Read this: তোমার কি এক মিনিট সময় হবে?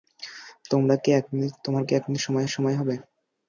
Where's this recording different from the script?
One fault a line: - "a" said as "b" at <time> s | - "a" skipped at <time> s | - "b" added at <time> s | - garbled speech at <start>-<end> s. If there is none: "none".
- "সময়" added at 2.5 s